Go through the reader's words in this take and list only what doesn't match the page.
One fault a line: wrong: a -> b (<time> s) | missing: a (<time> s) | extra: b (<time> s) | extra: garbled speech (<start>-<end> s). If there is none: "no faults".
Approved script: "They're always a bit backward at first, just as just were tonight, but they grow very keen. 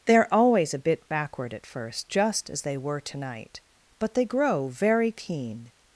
wrong: just -> they (2.6 s)